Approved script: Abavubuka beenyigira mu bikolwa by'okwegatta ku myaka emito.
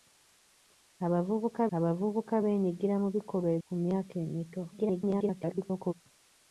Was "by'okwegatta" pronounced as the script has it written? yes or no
no